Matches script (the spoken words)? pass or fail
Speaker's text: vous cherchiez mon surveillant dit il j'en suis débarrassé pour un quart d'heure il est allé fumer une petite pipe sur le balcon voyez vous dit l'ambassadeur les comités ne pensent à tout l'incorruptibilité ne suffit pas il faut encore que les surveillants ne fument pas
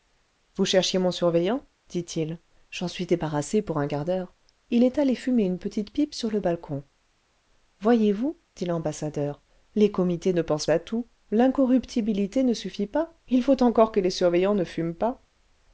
pass